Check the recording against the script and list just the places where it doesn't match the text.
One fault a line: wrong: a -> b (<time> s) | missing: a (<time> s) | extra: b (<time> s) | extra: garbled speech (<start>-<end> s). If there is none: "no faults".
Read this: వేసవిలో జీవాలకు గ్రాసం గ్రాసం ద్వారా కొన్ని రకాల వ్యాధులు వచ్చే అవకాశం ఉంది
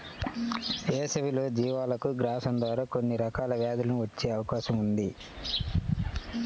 missing: గ్రాసం (2.5 s)